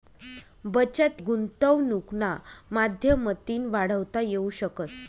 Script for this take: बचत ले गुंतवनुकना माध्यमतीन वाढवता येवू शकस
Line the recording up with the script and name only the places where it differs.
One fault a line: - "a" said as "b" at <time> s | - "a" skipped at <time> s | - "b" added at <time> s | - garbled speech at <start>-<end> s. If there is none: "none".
- "ले" skipped at 1.2 s